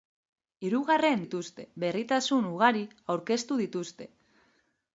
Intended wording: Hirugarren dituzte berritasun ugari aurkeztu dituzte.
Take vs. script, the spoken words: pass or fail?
pass